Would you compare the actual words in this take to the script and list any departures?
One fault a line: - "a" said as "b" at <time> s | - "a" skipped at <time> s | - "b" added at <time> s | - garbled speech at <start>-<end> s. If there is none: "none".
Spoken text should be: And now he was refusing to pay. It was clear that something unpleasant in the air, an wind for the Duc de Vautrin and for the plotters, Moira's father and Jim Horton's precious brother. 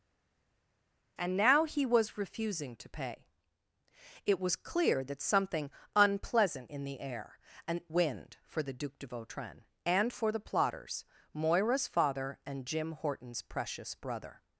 none